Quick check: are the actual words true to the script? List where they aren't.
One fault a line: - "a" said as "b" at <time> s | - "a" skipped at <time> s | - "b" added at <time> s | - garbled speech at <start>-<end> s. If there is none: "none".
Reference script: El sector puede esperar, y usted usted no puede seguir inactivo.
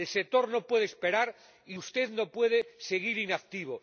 - "no" added at 0.5 s
- "usted" skipped at 2.1 s